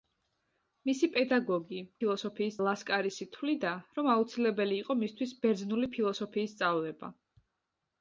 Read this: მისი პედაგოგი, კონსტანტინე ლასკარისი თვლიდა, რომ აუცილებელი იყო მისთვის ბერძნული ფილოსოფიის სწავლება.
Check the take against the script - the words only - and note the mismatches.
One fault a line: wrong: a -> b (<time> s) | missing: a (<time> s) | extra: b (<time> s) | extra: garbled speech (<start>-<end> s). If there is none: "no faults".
wrong: კონსტანტინე -> ფილოსოფიის (2.0 s)